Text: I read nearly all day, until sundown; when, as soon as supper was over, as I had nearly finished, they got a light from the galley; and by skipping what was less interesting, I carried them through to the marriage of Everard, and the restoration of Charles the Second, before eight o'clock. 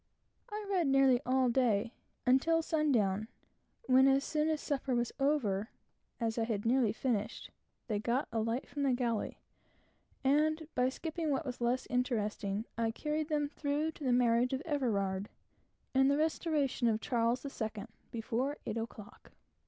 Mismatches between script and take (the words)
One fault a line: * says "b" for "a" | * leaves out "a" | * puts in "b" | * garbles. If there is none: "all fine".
all fine